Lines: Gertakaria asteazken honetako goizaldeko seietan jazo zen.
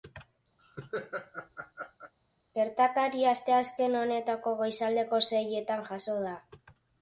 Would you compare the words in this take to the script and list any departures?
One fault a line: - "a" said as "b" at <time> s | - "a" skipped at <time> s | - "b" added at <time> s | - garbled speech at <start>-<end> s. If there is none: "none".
- "zen" said as "da" at 6.3 s